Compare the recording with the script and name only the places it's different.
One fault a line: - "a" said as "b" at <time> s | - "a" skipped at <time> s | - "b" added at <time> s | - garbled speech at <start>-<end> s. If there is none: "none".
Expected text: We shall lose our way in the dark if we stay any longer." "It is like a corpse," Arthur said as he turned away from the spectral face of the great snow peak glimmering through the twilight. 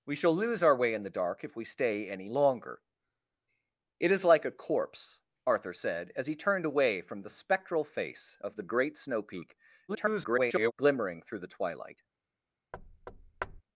- garbled speech at 9.9-10.7 s